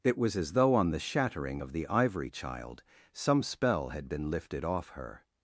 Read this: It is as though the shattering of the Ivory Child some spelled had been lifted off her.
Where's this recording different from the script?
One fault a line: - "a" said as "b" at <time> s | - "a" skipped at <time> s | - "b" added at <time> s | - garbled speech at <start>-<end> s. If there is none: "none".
- "is" said as "was" at 0.2 s
- "on" added at 0.7 s
- "spelled" said as "spell" at 3.4 s